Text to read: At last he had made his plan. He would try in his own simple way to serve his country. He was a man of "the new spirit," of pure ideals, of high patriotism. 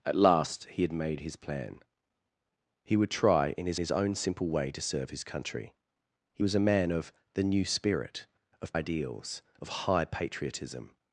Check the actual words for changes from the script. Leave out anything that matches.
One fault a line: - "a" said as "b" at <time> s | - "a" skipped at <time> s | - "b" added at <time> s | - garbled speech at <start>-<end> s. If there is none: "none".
- "his" added at 3.8 s
- "pure" skipped at 8.8 s